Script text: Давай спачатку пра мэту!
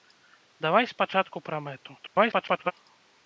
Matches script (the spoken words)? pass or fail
fail